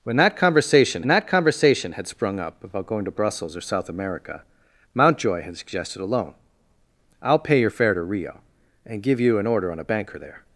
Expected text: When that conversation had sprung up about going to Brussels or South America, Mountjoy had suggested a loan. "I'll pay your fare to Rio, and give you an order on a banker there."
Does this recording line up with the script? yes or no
no